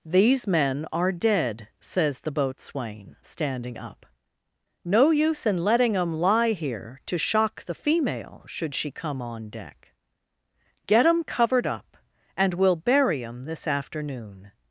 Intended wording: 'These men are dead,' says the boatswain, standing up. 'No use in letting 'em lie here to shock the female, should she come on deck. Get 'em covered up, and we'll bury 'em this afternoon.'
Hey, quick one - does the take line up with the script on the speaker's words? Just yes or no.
yes